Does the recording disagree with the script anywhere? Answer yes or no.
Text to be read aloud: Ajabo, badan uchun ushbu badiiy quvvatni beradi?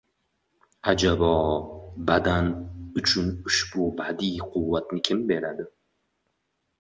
yes